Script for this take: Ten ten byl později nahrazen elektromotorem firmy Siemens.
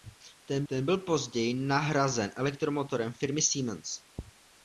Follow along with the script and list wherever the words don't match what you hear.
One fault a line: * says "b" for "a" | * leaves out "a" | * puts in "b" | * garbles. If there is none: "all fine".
all fine